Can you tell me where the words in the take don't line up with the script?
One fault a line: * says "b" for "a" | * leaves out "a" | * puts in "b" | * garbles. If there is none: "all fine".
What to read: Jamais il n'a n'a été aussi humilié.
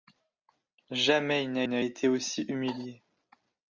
all fine